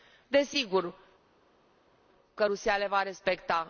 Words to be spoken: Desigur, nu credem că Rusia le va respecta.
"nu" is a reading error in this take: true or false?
true